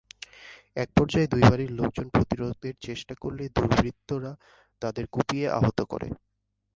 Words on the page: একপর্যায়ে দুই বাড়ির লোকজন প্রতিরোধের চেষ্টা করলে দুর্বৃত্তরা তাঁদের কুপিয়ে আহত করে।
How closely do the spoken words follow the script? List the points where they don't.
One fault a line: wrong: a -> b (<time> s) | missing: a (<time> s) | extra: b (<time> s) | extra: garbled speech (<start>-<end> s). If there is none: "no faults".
no faults